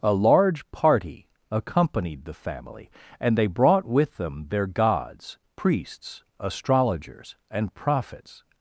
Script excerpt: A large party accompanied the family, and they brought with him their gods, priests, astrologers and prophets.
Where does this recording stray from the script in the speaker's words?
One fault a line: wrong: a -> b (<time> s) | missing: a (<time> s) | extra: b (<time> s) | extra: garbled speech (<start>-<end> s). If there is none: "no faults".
wrong: him -> them (4.2 s)